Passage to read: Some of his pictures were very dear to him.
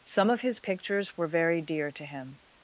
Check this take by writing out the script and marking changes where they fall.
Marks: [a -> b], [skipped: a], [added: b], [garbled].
Some of his pictures were very dear to him.